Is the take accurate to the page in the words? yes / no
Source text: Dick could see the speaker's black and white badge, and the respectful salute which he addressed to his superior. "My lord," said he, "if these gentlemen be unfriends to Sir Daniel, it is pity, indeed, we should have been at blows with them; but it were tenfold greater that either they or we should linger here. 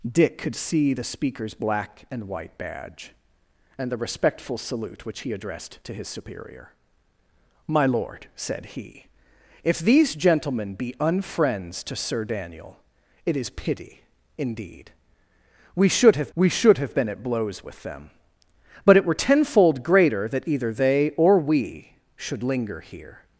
no